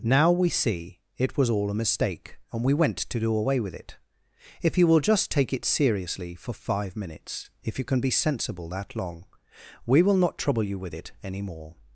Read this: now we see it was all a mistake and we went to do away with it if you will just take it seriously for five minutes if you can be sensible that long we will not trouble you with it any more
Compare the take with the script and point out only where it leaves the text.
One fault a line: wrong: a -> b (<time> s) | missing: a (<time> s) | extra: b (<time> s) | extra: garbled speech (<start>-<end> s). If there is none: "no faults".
no faults